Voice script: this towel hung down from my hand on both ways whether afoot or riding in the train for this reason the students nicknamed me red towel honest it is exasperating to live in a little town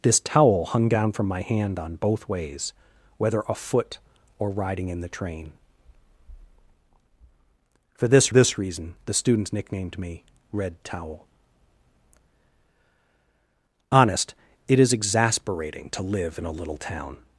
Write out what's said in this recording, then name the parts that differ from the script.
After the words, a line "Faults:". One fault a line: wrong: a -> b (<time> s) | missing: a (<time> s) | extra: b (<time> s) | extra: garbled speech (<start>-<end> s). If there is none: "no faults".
this towel hung down from my hand on both ways whether afoot or riding in the train for this this reason the students nicknamed me red towel honest it is exasperating to live in a little town
Faults:
extra: this (8.3 s)